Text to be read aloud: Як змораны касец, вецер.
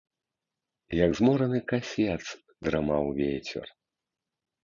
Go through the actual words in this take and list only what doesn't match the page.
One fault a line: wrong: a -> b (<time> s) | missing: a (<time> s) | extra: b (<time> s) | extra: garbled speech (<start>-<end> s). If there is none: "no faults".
extra: драмаў (2.7 s)